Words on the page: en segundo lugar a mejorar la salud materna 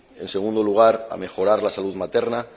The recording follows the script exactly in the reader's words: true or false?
true